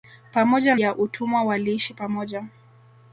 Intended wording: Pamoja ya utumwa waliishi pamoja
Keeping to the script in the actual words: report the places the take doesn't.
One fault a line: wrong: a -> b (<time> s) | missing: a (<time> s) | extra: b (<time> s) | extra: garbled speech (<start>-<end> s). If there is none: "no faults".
no faults